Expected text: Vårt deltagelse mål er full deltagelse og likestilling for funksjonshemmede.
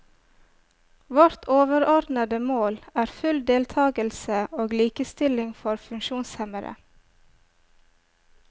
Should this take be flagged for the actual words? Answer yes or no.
yes